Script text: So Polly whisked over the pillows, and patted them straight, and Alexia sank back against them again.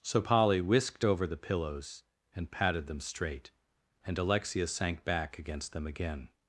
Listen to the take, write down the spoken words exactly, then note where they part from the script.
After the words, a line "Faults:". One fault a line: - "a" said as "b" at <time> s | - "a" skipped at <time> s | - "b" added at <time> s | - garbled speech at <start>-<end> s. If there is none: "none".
So Polly whisked over the pillows, and patted them straight, and Alexia sank back against them again.
Faults:
none